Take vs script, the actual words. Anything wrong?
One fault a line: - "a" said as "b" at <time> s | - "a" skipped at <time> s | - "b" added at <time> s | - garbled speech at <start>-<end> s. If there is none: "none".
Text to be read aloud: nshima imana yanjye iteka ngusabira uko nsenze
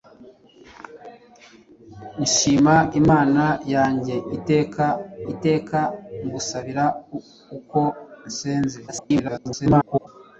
- "iteka" added at 5.3 s
- garbled speech at 8.9-10.1 s